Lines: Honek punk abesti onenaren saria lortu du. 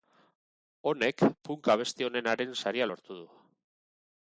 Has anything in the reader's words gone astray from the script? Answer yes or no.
no